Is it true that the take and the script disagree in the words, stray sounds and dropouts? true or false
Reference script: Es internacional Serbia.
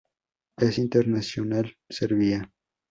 false